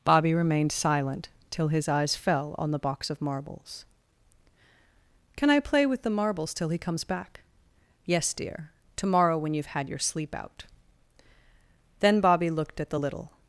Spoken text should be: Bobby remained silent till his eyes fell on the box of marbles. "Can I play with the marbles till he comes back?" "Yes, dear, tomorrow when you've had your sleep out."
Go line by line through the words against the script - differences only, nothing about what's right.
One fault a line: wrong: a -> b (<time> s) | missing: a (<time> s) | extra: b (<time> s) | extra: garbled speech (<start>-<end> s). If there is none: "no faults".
extra: Then Bobby looked at the little (12.0 s)